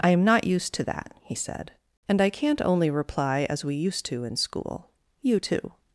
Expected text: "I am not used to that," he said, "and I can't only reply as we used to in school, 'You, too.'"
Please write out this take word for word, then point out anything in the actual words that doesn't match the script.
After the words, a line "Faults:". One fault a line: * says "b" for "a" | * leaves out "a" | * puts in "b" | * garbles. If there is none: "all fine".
"I am not used to that," he said, "and I can't only reply as we used to in school, 'You, too.'"
Faults:
all fine